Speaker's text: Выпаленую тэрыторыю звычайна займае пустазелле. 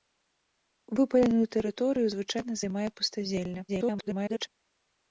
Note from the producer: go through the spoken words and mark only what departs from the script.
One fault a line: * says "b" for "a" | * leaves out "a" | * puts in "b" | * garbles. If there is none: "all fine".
* garbles